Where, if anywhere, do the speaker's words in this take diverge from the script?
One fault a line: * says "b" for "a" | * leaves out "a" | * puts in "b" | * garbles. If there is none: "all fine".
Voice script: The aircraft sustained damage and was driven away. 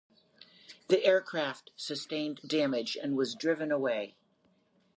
all fine